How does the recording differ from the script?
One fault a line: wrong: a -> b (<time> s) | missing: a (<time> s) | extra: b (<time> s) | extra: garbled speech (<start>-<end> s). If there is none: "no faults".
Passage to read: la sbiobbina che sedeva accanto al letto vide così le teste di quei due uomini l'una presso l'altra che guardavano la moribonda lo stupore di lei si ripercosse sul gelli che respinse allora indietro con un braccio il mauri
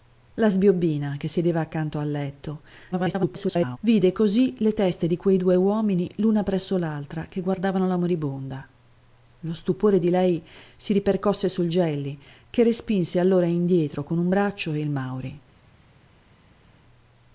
extra: garbled speech (2.9-3.8 s)